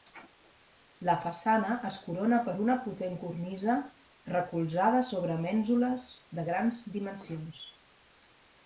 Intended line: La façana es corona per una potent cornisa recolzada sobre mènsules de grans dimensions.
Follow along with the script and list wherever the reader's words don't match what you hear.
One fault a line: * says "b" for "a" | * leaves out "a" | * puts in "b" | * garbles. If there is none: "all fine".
all fine